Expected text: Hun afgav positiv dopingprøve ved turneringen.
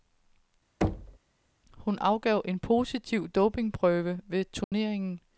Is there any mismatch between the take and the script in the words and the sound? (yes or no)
yes